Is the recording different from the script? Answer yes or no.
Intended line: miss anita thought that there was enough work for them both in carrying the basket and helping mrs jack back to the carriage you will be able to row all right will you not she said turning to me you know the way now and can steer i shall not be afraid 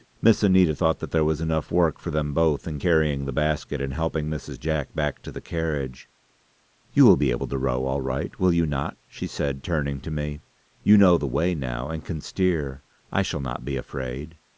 no